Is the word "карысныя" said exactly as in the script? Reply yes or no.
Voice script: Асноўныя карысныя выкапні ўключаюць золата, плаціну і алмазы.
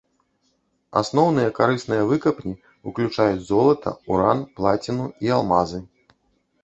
yes